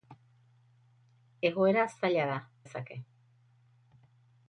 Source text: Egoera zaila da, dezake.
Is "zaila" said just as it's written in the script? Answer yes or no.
yes